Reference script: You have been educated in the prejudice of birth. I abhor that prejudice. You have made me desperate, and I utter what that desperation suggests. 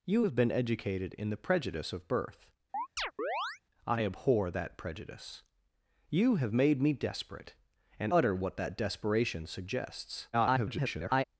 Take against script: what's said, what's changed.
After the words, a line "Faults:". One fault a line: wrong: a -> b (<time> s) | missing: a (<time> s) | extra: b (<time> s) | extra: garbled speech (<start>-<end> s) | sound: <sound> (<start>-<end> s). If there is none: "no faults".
You have been educated in the prejudice of birth. I abhor that prejudice. You have made me desperate, and utter what that desperation suggests. [garbled]
Faults:
sound: chirp (2.7-3.6 s)
missing: I (8.1 s)
extra: garbled speech (10.3-11.2 s)